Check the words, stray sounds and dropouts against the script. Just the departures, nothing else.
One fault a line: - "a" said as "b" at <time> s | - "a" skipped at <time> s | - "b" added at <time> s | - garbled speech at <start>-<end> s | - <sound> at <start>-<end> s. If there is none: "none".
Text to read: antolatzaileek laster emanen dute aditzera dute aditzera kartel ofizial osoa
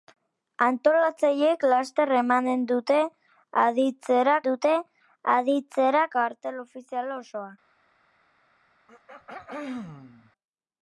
- throat clearing at 8.9-10.3 s